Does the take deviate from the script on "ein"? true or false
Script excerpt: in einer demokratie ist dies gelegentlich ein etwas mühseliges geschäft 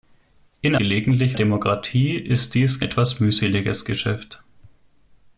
true